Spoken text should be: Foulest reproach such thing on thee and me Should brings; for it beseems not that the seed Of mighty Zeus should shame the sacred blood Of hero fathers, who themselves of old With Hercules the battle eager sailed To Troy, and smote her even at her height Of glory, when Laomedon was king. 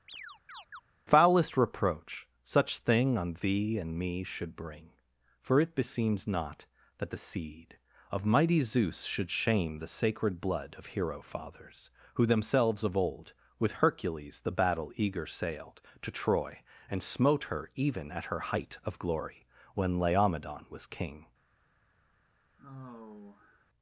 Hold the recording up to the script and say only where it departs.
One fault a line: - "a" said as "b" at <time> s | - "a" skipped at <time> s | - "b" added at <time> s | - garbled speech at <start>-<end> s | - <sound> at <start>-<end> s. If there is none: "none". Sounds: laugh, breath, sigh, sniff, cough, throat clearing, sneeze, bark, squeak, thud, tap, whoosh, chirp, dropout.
- chirp at 0.1-0.8 s
- "brings" said as "bring" at 4.5 s
- sigh at 22.6-23.7 s